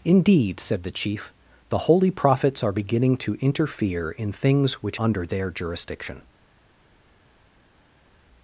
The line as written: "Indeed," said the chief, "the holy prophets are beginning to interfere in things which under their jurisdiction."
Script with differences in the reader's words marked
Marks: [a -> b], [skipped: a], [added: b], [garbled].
"Indeed," said the chief, "the holy prophets are beginning to interfere in things which under their jurisdiction."